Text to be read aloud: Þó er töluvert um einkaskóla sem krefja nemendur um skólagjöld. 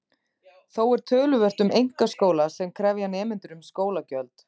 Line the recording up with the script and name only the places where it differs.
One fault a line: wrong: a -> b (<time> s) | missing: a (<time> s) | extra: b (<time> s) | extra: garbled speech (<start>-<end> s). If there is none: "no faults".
no faults